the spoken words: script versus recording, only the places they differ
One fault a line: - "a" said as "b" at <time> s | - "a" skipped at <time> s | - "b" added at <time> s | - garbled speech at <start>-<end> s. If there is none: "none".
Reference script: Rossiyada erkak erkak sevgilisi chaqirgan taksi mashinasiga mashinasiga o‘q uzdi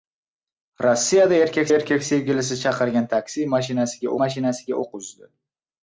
none